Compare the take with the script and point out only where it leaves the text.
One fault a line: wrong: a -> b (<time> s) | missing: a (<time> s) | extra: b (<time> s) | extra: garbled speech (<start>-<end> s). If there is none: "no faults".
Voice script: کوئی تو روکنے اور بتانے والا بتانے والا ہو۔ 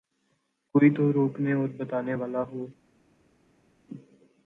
missing: بتانے والا (2.4 s)